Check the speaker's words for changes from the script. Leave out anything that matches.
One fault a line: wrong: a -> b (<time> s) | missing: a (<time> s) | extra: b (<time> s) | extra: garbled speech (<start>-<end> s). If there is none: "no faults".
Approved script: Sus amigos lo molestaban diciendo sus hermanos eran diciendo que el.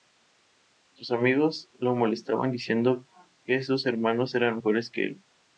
extra: que (3.4 s)
wrong: diciendo -> mejores (4.5 s)